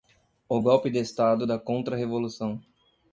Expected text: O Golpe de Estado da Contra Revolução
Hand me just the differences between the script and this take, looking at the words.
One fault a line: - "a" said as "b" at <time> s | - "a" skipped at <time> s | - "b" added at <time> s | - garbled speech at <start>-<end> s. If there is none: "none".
none